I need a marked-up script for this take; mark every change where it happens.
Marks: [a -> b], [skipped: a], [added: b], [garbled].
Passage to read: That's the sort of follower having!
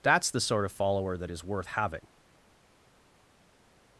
That's the sort of follower [added: that is worth] having!